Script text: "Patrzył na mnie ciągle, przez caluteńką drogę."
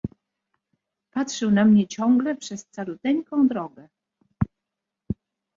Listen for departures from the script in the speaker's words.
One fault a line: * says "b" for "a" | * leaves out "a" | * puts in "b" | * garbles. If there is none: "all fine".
all fine